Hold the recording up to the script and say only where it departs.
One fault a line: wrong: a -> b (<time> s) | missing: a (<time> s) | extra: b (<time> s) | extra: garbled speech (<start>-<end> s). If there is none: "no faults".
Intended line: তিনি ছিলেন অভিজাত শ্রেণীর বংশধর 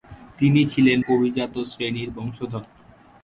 no faults